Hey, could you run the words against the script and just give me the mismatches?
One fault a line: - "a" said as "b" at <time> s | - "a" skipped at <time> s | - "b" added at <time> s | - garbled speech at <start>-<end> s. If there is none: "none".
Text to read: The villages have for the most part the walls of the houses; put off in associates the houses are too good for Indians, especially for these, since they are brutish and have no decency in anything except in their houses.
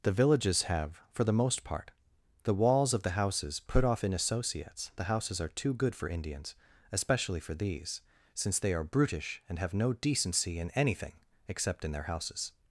none